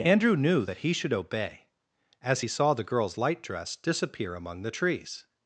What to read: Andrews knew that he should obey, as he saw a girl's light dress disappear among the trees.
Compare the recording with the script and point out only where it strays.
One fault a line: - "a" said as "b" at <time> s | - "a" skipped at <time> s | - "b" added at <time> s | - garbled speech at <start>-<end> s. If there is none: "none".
- "Andrews" said as "Andrew" at 0.0 s
- "a" said as "the" at 2.7 s